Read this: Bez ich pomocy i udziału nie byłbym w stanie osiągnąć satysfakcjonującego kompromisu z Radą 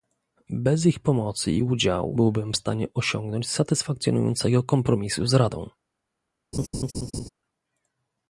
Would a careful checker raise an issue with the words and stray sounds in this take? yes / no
yes